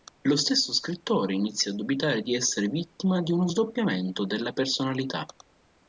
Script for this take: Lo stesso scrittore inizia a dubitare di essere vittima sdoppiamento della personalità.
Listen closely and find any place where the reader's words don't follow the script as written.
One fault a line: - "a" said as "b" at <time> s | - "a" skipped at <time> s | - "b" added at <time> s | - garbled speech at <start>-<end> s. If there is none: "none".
- "di uno" added at 3.2 s